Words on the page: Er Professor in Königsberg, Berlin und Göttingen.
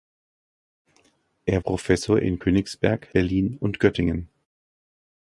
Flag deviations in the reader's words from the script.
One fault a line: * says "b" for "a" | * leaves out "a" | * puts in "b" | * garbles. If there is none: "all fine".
all fine